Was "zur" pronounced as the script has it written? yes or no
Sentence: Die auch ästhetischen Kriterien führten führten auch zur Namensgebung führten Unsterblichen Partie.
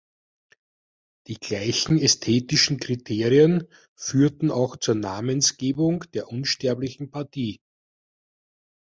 yes